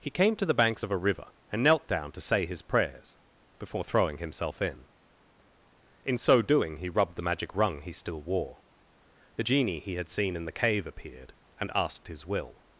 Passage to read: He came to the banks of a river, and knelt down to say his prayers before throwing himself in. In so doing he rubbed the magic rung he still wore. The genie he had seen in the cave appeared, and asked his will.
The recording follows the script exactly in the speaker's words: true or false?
true